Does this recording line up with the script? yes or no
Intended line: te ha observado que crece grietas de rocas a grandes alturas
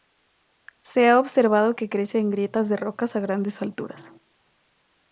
no